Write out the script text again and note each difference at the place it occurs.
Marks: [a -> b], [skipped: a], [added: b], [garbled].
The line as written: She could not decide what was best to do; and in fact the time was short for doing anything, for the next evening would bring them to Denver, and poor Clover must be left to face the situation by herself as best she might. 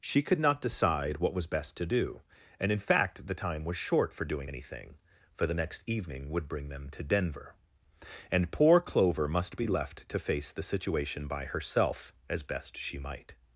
She could not decide what was best to do; and in fact the time was short for doing anything, for the next evening would bring them to Denver, and poor Clover must be left to face the situation by herself as best she might.